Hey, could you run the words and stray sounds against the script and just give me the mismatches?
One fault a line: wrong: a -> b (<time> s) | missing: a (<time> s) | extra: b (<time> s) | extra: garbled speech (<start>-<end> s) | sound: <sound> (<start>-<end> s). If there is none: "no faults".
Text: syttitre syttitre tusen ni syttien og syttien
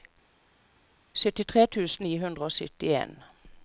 missing: syttitre (1.7 s)
wrong: syttien -> hundre (2.2 s)